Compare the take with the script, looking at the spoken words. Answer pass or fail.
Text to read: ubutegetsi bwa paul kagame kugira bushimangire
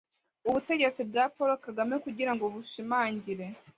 fail